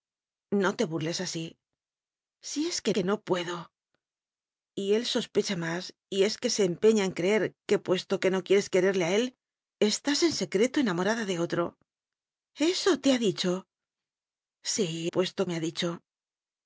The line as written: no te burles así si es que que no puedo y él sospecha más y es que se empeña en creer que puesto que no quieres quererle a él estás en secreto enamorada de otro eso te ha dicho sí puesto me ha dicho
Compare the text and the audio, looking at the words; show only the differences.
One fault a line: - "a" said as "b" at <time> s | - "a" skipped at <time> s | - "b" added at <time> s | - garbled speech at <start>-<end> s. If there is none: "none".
none